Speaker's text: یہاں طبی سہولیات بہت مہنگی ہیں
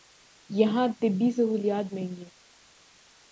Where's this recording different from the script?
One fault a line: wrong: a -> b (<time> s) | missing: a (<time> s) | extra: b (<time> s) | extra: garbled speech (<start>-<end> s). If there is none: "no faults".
missing: بہت (1.9 s)